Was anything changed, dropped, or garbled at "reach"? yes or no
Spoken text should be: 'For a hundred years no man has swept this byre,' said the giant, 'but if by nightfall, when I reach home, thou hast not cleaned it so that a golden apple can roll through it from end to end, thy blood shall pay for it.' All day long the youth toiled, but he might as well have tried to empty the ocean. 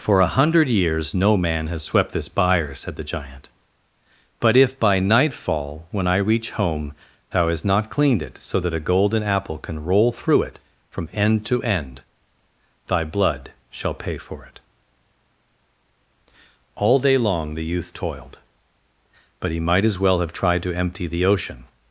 no